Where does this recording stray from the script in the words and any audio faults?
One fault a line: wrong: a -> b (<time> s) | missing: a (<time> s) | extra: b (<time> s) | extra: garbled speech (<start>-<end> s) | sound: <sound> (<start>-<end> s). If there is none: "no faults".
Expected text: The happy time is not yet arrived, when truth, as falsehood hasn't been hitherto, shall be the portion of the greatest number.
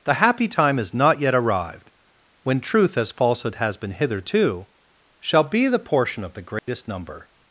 wrong: hasn't -> has (3.5 s)
sound: dropout (6.6-6.7 s)